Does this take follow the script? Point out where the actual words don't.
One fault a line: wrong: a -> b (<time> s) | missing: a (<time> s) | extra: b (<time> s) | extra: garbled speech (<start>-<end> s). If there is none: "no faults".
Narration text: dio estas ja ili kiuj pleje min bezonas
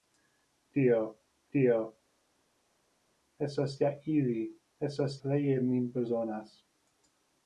extra: dio (1.6 s)
wrong: kiuj -> estas (4.9 s)